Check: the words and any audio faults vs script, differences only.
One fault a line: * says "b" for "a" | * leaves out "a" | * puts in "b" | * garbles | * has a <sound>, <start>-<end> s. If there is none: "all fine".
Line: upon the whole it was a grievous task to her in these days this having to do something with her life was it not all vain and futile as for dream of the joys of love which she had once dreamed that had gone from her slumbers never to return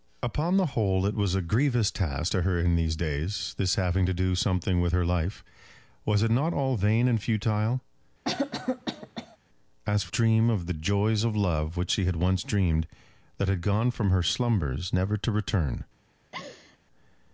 * has a cough, 8.2-9.4 s
* has a laugh, 16.3-16.8 s